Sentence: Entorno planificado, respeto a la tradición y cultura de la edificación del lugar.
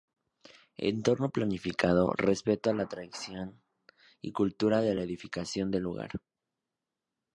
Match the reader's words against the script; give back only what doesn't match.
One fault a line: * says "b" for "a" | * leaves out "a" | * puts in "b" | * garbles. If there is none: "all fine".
all fine